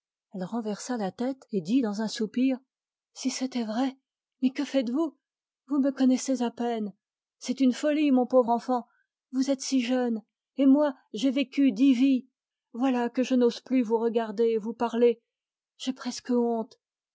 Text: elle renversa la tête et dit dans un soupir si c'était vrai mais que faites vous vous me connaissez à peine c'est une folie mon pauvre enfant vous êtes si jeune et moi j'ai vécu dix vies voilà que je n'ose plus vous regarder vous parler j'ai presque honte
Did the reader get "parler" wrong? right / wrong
right